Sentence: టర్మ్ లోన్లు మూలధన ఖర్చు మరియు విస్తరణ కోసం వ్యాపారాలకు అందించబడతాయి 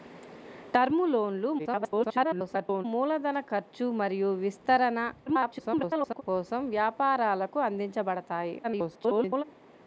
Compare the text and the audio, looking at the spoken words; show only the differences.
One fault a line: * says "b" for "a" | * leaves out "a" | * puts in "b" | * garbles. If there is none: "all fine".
* garbles
* garbles
* garbles